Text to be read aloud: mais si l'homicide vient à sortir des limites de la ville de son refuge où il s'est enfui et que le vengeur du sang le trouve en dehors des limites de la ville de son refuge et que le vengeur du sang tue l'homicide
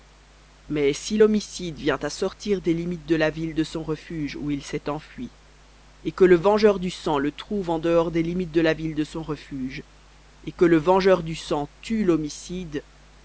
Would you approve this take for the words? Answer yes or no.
yes